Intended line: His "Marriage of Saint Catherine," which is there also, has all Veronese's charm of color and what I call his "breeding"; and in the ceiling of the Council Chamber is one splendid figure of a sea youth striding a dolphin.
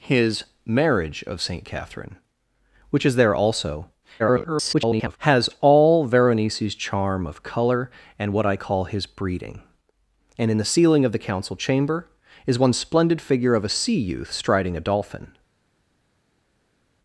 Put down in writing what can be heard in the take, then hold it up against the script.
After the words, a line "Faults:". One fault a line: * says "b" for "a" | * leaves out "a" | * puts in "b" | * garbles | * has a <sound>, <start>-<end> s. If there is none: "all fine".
His "Marriage of Saint Catherine," which is there also, [garbled] has all Veronese's charm of color and what I call his "breeding"; and in the ceiling of the Council Chamber is one splendid figure of a sea youth striding a dolphin.
Faults:
* garbles